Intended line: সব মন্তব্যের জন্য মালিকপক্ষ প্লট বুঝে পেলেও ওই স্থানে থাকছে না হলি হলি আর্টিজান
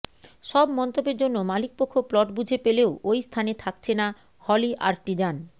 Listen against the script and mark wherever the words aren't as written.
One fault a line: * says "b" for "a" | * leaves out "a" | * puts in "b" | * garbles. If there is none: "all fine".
* leaves out "হলি"